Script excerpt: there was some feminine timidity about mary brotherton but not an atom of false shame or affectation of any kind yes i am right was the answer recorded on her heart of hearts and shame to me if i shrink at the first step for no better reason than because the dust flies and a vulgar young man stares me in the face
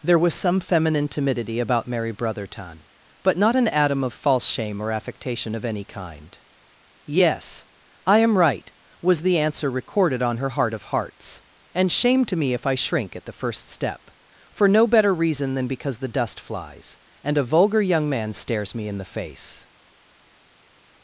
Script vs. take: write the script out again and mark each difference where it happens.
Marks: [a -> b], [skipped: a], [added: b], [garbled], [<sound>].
there was some feminine timidity about mary brotherton but not an atom of false shame or affectation of any kind yes i am right was the answer recorded on her heart of hearts and shame to me if i shrink at the first step for no better reason than because the dust flies and a vulgar young man stares me in the face